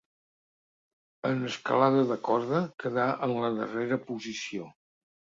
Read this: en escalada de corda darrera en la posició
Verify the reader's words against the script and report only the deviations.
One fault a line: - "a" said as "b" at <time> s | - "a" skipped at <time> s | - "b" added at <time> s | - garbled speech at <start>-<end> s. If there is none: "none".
- "darrera" said as "quedà" at 2.8 s
- "darrera" added at 3.6 s